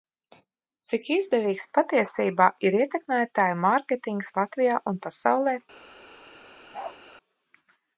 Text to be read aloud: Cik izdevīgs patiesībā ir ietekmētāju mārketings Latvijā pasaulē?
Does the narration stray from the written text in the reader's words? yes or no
yes